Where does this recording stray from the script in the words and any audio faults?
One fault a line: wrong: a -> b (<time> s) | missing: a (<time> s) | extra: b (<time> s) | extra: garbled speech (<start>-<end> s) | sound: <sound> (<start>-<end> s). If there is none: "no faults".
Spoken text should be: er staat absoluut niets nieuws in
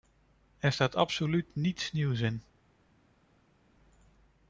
no faults